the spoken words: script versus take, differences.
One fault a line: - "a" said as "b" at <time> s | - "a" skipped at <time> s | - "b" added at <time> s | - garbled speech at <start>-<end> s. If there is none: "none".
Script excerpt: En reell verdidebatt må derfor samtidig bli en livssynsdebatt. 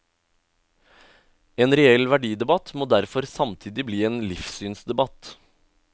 none